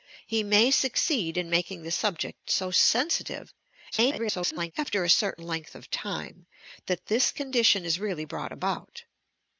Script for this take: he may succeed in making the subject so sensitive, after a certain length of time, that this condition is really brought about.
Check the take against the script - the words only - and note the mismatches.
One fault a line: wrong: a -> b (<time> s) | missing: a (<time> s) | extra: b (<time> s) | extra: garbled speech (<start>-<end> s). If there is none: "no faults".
extra: garbled speech (3.9-4.7 s)